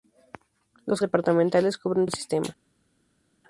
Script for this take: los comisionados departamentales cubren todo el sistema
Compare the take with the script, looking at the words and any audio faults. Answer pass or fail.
fail